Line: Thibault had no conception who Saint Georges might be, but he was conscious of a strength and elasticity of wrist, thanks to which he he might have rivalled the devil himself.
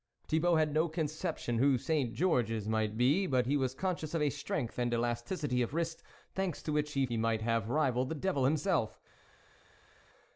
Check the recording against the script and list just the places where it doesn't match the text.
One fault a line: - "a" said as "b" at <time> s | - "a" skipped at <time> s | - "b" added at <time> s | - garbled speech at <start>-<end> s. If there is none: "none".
none